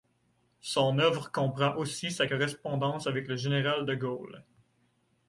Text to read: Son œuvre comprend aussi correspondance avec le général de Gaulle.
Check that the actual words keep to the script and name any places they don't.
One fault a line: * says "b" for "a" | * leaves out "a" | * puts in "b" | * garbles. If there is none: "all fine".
* puts in "sa"